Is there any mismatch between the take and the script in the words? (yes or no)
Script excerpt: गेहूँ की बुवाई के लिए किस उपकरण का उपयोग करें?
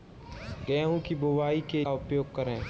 yes